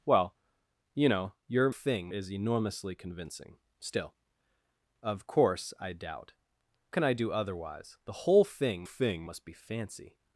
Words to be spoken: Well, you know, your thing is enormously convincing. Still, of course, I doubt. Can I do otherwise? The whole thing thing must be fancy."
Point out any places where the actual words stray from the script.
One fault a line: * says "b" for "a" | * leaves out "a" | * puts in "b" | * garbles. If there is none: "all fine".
all fine